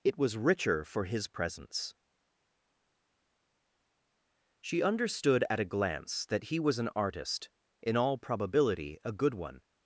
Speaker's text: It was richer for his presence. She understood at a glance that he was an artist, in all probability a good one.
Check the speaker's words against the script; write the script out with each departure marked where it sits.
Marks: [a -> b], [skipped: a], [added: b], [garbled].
It was richer for his presence. She understood at a glance that he was an artist, in all probability a good one.